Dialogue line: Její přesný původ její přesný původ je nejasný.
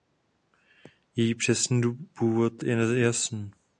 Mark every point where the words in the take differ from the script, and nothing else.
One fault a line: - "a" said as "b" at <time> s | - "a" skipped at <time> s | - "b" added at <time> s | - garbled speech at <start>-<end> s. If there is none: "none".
- "její přesný původ" skipped at 2.6 s